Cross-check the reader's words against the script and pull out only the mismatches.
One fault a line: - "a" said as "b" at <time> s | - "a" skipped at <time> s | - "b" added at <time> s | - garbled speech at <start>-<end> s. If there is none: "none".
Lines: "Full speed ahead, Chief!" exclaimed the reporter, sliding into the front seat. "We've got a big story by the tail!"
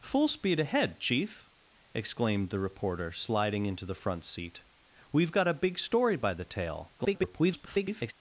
- garbled speech at 7.0-8.1 s